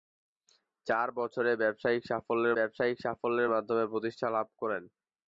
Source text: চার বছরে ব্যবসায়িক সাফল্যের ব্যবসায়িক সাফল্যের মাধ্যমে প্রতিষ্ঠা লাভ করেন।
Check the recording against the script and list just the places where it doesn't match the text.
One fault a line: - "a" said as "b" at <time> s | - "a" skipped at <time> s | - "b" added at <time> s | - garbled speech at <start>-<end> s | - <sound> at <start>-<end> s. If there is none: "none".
none